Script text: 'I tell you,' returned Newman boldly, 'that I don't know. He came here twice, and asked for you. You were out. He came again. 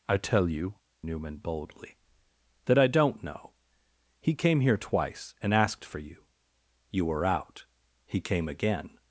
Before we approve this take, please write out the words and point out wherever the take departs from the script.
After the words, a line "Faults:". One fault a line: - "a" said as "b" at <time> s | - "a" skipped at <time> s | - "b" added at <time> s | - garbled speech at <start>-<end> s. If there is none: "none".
'I tell you,' Newman boldly, 'that I don't know. He came here twice, and asked for you. You were out. He came again.
Faults:
- "returned" skipped at 0.8 s